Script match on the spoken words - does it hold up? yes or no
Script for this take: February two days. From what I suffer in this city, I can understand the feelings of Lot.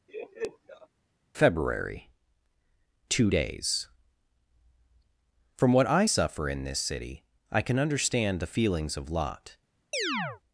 yes